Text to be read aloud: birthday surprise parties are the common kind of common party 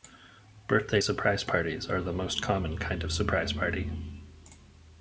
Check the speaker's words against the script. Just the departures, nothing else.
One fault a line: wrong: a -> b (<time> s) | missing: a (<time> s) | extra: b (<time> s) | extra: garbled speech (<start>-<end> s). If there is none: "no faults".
extra: most (2.1 s)
wrong: common -> surprise (3.1 s)